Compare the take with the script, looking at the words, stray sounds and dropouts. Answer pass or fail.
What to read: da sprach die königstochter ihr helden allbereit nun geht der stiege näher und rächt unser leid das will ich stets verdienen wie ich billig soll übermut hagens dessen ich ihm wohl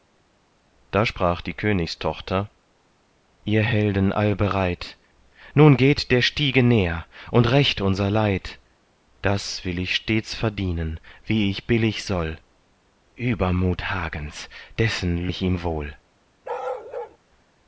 fail